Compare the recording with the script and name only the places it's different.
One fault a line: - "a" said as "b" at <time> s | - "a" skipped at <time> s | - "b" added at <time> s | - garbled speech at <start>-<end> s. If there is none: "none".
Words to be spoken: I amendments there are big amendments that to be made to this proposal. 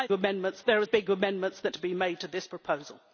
none